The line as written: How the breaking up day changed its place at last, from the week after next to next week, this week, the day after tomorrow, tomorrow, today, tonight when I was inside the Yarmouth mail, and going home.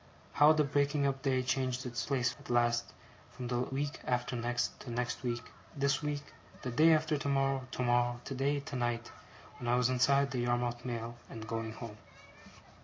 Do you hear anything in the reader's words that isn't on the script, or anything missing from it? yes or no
no